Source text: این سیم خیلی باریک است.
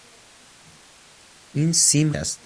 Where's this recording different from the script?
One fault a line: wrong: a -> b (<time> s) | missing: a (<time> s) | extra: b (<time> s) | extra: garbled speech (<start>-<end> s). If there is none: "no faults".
missing: خیلی باریک (2.1 s)